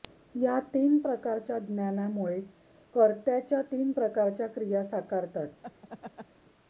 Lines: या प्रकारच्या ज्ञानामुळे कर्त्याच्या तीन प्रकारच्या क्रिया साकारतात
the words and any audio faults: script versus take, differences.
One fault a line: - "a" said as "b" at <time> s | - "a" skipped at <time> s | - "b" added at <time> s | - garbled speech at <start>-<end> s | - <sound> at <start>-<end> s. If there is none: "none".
- "तीन" added at 0.7 s
- laugh at 5.6-6.3 s